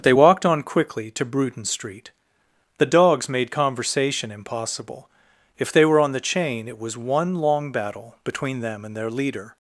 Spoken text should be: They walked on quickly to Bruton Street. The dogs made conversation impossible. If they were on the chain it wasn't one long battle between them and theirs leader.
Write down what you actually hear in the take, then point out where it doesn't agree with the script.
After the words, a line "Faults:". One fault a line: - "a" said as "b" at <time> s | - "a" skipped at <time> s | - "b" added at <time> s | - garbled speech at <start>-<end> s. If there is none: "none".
They walked on quickly to Bruton Street. The dogs made conversation impossible. If they were on the chain it was one long battle between them and their leader.
Faults:
- "wasn't" said as "was" at 6.8 s
- "theirs" said as "their" at 9.0 s